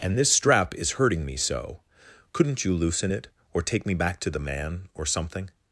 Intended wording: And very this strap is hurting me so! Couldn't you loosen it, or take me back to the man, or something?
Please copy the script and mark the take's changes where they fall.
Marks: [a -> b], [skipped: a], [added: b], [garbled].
And [skipped: very] this strap is hurting me so! Couldn't you loosen it, or take me back to the man, or something?